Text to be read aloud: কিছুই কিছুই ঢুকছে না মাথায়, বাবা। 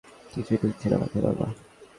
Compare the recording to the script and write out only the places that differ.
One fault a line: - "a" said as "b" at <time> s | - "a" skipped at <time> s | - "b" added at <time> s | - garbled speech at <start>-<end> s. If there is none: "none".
- "কিছুই" skipped at 0.6 s